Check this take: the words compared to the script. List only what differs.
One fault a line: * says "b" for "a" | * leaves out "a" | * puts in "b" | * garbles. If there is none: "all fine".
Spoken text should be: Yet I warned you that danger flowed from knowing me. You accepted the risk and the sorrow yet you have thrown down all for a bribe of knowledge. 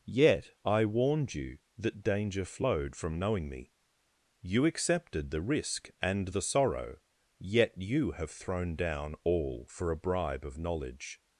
all fine